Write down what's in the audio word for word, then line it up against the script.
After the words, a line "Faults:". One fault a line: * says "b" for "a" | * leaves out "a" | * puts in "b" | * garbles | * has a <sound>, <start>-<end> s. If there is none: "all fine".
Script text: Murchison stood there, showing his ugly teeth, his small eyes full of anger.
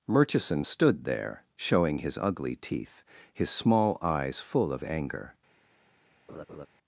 Murchison stood there, showing his ugly teeth, his small eyes full of anger.
Faults:
* has a laugh, 6.3-6.7 s